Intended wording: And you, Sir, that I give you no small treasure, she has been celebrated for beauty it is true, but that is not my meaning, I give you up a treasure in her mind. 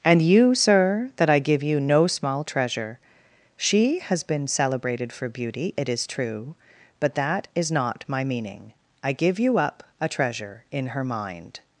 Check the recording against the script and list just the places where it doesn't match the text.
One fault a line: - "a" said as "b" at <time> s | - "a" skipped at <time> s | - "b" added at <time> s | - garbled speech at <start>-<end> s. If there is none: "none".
none